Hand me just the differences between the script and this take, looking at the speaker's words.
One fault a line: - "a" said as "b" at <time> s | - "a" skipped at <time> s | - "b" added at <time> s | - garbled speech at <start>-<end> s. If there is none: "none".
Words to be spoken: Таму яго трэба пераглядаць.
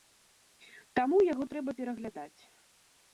none